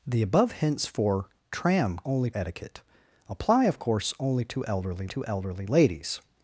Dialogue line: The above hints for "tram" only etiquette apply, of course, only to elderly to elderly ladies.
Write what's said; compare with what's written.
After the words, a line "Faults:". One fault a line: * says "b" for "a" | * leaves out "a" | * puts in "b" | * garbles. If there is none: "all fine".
The above hints for "tram" only etiquette apply, of course, only to elderly to elderly ladies.
Faults:
all fine